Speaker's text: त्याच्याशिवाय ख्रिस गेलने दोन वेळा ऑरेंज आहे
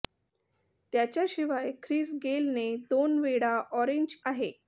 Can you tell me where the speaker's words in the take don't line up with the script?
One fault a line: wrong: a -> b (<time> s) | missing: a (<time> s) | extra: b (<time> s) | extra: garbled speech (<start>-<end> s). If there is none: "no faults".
no faults